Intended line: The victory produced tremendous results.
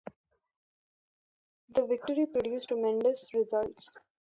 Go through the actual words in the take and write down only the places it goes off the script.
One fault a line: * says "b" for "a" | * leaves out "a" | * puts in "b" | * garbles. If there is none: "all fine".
all fine